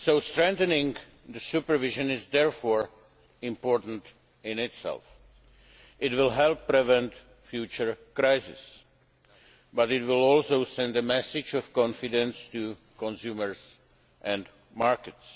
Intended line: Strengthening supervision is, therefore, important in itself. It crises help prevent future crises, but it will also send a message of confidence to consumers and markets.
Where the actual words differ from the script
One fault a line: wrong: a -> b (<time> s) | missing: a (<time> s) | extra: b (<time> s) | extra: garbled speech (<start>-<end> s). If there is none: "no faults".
wrong: crises -> will (6.1 s)